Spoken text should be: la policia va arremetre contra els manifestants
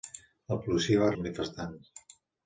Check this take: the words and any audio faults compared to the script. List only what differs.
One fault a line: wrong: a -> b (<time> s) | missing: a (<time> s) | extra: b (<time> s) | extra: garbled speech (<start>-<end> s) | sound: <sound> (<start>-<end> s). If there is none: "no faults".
missing: arremetre contra (1.1 s)